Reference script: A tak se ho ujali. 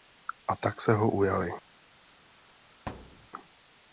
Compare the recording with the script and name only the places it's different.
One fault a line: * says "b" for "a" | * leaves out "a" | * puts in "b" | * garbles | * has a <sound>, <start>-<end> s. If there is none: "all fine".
* has a thud, 2.9-3.3 s